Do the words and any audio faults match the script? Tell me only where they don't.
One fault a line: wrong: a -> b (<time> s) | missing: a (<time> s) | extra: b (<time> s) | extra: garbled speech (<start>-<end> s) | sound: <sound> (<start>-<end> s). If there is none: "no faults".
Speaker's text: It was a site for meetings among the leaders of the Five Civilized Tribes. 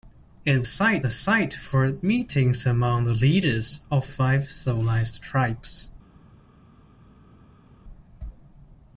wrong: was -> site (0.6 s)
missing: the (4.1 s)